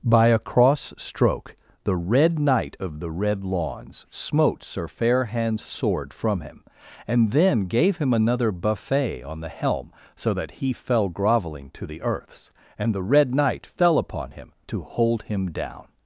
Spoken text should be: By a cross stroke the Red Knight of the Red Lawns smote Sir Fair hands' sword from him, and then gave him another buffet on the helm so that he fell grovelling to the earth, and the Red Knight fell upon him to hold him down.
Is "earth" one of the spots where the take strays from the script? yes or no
yes